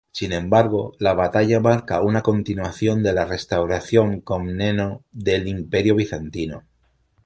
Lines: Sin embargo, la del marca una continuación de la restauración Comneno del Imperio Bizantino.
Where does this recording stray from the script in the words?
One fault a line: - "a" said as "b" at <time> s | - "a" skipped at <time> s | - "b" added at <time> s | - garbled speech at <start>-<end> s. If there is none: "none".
- "del" said as "batalla" at 1.1 s